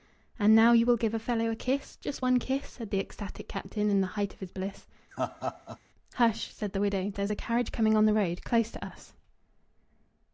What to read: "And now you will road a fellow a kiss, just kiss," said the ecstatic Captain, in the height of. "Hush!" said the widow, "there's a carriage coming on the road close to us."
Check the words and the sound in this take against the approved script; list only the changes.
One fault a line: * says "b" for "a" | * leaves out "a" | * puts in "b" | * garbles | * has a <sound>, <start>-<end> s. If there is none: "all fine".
* says "give" for "road"
* puts in "one"
* puts in "his bliss"
* has a laugh, 5.1-5.8 s